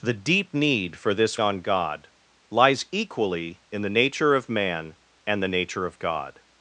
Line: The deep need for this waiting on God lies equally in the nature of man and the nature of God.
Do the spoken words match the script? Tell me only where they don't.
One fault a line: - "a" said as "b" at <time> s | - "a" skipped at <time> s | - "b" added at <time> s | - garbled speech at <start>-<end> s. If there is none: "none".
- "waiting" skipped at 1.4 s